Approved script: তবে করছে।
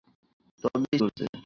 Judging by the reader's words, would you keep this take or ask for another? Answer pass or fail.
pass